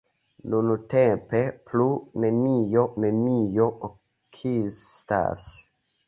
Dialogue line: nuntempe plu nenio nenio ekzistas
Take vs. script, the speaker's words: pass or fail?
pass